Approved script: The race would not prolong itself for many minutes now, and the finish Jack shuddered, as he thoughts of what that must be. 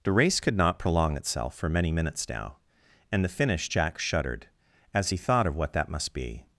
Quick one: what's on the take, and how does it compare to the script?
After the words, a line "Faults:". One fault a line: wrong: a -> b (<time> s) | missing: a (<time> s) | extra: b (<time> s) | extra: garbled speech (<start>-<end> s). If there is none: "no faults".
The race could not prolong itself for many minutes now, and the finish Jack shuddered, as he thought of what that must be.
Faults:
wrong: would -> could (0.4 s)
wrong: thoughts -> thought (5.2 s)